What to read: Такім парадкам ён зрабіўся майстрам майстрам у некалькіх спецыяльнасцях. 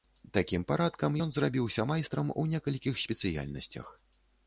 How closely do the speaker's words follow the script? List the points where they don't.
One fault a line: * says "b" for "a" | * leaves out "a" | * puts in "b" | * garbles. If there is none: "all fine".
* leaves out "майстрам"